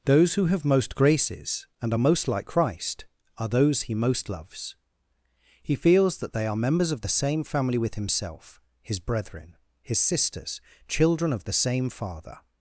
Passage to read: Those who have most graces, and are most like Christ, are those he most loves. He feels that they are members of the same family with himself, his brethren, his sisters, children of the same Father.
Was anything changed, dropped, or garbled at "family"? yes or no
no